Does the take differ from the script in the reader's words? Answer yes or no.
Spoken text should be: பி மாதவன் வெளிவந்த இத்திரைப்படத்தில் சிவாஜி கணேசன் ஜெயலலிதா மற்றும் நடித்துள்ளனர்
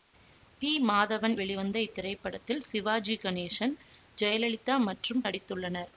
no